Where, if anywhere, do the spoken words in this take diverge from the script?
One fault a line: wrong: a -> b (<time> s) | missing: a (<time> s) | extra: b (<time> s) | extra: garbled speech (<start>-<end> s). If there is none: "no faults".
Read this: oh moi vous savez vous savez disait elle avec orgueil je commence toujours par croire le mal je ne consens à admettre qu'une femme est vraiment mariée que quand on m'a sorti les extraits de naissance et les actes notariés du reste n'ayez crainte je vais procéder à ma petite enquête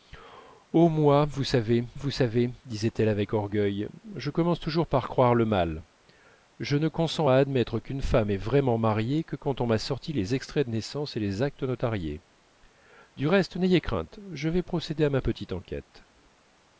no faults